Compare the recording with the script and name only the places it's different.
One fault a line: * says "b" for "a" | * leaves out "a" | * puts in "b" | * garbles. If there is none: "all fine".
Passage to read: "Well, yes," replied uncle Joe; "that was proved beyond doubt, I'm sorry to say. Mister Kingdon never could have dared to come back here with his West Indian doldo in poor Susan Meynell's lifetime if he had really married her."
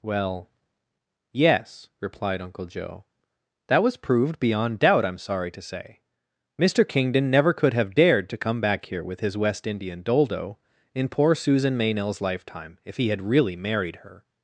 all fine